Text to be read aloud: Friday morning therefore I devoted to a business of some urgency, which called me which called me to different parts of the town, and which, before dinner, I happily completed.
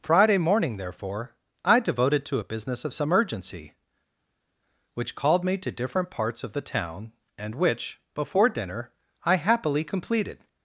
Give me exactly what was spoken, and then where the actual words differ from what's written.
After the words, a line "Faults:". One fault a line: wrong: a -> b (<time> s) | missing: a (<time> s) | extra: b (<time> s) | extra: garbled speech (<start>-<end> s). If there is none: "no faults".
Friday morning therefore I devoted to a business of some urgency, which called me to different parts of the town, and which, before dinner, I happily completed.
Faults:
missing: which called me (5.6 s)